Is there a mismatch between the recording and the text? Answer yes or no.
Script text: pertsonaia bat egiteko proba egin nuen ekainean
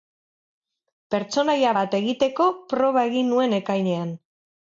no